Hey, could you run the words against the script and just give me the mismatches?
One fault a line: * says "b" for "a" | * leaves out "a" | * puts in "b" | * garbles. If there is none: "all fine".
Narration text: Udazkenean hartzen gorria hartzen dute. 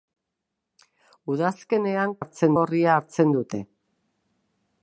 all fine